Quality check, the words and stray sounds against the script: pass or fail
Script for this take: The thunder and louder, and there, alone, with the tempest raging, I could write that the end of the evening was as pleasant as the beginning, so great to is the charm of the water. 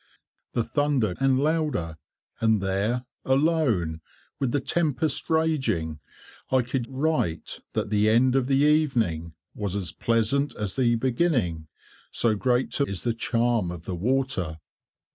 pass